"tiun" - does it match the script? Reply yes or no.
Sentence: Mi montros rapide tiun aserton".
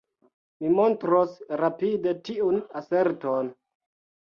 yes